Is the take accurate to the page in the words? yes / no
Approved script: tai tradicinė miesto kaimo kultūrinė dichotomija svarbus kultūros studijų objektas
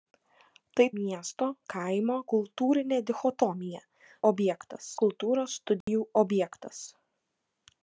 no